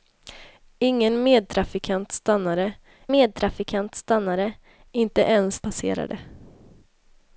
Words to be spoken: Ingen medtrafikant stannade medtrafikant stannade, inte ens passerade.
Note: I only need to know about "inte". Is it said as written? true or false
true